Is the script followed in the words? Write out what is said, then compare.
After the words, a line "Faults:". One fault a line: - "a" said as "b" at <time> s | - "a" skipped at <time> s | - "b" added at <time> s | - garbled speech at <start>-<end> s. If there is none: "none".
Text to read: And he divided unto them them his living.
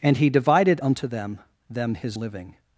And he divided unto them them his living.
Faults:
none